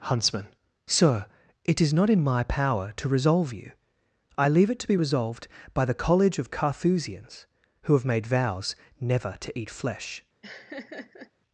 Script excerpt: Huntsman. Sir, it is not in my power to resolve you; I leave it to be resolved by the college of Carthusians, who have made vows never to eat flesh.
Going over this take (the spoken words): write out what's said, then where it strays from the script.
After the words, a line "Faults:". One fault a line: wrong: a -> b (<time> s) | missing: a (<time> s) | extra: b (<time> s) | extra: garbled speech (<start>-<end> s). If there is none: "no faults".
Huntsman. Sir, it is not in my power to resolve you; I leave it to be resolved by the college of Carthusians, who have made vows never to eat flesh.
Faults:
no faults